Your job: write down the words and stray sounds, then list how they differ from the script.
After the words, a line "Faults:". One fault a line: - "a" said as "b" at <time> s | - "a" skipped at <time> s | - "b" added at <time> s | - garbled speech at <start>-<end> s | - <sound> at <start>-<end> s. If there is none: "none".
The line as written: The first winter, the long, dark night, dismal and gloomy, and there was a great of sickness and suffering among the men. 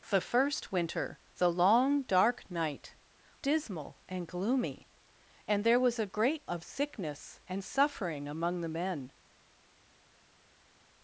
The first winter, the long, dark night, dismal and gloomy, and there was a great of sickness and suffering among the men.
Faults:
none